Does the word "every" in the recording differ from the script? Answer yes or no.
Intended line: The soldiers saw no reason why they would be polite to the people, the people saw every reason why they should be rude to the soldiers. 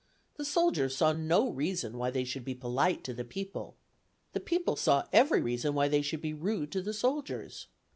no